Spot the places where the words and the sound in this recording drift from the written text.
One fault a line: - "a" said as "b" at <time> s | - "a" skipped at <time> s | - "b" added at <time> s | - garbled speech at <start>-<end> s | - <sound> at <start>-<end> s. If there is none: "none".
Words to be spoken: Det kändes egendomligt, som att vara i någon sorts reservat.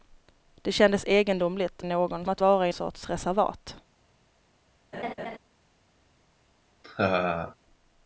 - "som" said as "någon" at 1.8 s
- "någon" skipped at 2.7 s
- laugh at 4.9-5.4 s
- laugh at 6.8-7.6 s